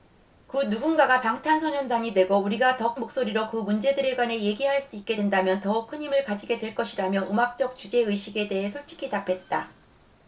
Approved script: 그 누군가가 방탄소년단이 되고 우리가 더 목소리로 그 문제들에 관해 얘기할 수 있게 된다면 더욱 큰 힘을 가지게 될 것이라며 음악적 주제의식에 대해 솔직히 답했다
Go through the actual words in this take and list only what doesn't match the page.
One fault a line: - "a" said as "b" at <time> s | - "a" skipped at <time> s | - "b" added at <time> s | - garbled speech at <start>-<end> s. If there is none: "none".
none